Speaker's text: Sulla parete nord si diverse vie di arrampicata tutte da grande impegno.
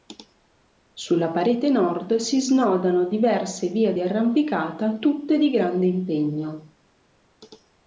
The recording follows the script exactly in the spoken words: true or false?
false